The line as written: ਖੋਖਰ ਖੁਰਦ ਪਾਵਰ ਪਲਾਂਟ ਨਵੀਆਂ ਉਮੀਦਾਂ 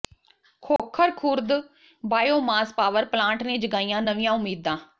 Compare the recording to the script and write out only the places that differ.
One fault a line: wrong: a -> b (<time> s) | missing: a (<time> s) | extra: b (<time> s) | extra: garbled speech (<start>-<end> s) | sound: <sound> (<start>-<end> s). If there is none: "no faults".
sound: dropout (0.8-0.8 s)
extra: ਬਾਇਓਮਾਸ (2.0 s)
extra: ਨੇ ਜਗਾਈਆਂ (3.4 s)